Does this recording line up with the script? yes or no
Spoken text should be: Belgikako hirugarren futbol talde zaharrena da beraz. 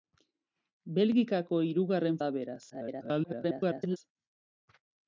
no